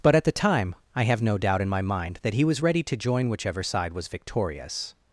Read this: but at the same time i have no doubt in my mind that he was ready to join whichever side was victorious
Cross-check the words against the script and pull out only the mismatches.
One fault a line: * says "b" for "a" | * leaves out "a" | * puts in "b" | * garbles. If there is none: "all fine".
* leaves out "same"